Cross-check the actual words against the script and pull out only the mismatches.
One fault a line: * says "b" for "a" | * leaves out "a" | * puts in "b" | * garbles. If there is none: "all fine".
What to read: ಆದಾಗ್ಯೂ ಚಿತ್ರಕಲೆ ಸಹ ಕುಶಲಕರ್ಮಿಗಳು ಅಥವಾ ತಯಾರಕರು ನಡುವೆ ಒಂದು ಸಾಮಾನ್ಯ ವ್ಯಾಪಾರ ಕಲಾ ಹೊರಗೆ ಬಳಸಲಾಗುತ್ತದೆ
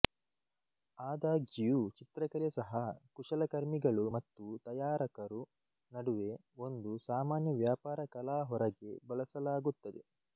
* says "ಮತ್ತು" for "ಅಥವಾ"